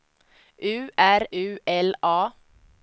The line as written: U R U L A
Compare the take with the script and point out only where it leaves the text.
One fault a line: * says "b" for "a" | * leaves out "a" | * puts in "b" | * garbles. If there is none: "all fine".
all fine